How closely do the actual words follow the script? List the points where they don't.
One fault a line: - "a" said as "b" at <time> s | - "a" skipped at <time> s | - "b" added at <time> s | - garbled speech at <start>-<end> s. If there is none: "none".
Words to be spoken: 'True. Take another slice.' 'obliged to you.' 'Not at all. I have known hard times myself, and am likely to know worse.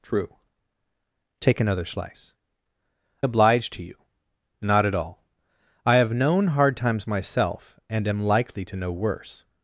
none